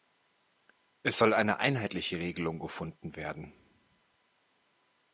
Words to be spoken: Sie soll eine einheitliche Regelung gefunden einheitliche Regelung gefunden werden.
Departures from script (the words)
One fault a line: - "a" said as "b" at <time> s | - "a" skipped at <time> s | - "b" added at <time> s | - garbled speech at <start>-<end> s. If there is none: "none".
- "Sie" said as "Es" at 1.0 s
- "einheitliche Regelung gefunden" skipped at 3.2 s